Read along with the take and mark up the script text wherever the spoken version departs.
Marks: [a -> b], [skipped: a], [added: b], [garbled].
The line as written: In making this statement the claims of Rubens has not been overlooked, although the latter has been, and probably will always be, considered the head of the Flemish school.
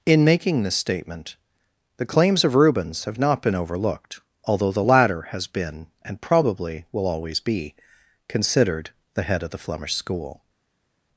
In making this statement the claims of Rubens [has -> have] not been overlooked, although the latter has been, and probably will always be, considered the head of the Flemish school.